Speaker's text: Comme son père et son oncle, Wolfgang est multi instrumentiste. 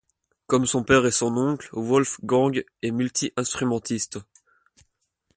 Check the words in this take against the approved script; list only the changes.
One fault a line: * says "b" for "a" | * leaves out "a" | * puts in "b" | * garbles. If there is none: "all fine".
all fine